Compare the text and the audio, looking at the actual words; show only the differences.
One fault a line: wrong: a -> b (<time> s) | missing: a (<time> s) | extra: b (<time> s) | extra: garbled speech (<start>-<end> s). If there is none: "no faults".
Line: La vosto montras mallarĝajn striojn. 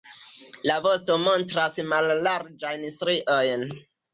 no faults